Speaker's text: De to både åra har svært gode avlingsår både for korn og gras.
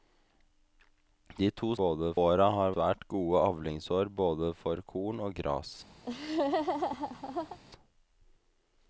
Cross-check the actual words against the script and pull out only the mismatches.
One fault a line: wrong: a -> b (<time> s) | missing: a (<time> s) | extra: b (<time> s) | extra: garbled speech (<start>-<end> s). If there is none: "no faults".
no faults